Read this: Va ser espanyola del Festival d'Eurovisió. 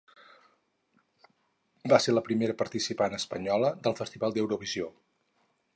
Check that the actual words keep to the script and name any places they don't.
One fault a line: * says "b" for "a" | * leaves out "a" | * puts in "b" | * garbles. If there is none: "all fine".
* puts in "la primera participant"